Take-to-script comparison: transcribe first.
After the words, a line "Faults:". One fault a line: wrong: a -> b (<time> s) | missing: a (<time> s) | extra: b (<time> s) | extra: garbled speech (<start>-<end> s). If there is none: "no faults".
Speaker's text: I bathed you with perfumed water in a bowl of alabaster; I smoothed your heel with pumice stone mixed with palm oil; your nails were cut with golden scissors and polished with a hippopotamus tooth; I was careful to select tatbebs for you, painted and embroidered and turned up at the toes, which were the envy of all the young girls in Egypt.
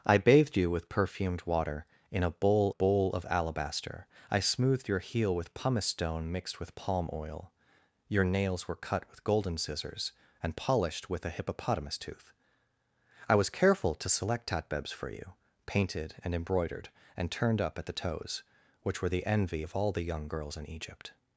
I bathed you with perfumed water in a bowl bowl of alabaster; I smoothed your heel with pumice stone mixed with palm oil; your nails were cut with golden scissors and polished with a hippopotamus tooth; I was careful to select tatbebs for you, painted and embroidered and turned up at the toes, which were the envy of all the young girls in Egypt.
Faults:
extra: bowl (2.7 s)